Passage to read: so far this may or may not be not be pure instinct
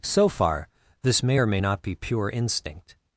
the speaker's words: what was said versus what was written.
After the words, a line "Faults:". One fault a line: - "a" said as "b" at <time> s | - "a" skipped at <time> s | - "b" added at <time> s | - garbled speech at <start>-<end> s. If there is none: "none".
so far this may or may not be pure instinct
Faults:
- "not be" skipped at 2.0 s